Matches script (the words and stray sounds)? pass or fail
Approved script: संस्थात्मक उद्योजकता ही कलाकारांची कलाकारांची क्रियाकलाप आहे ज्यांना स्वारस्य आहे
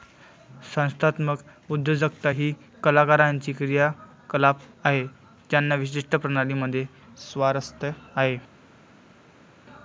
fail